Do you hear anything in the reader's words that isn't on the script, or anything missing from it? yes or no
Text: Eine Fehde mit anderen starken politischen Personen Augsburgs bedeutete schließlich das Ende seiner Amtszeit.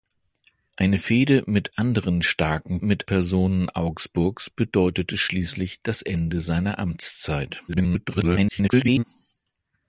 yes